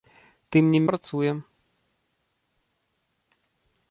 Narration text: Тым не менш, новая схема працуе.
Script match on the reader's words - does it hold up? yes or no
no